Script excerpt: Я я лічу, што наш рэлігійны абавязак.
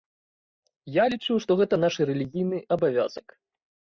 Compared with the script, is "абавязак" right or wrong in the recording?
right